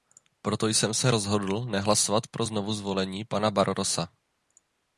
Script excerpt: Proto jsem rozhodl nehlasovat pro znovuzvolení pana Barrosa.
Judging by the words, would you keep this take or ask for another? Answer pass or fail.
fail